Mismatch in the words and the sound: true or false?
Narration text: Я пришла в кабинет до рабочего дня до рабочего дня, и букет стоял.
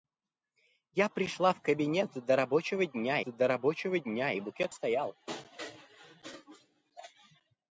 false